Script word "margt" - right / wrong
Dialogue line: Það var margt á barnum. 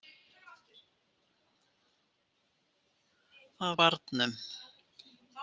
wrong